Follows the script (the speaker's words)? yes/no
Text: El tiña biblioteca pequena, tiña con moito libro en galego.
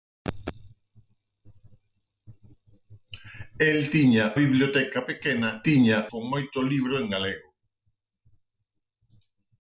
yes